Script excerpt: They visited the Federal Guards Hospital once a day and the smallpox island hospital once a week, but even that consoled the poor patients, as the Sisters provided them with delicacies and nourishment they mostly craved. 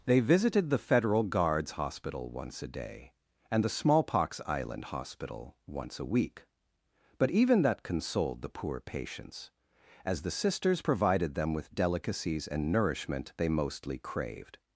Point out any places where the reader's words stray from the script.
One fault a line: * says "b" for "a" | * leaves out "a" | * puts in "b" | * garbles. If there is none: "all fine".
all fine